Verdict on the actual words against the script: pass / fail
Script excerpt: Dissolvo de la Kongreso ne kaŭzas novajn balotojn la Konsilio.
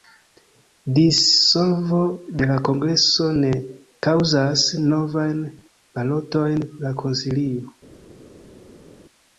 pass